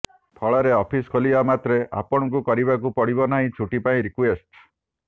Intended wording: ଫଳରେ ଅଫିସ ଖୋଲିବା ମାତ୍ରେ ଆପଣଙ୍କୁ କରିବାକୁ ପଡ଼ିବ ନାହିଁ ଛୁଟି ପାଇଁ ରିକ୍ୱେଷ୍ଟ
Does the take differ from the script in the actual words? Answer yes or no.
no